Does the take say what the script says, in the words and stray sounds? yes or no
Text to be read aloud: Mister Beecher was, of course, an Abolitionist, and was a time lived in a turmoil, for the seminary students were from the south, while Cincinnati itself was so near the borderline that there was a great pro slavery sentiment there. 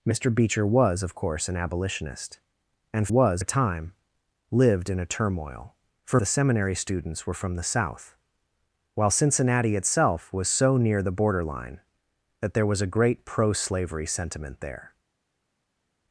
yes